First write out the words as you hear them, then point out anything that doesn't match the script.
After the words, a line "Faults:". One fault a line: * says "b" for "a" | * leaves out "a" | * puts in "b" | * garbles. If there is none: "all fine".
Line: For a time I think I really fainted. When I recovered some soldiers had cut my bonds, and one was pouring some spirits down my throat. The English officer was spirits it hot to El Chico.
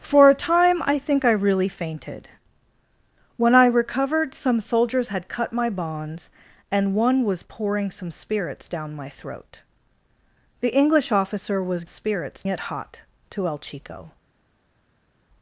For a time I think I really fainted. When I recovered some soldiers had cut my bonds, and one was pouring some spirits down my throat. The English officer was spirits it hot to El Chico.
Faults:
all fine